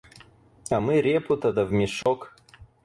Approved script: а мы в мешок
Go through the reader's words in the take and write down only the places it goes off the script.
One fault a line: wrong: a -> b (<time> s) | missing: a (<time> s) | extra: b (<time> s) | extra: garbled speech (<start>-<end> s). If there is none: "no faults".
extra: репу то да (1.0 s)